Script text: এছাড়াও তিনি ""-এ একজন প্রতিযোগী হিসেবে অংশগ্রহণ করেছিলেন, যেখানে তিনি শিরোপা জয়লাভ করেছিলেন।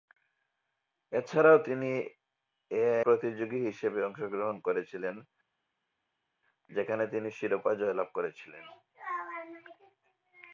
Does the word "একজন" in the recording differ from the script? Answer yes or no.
yes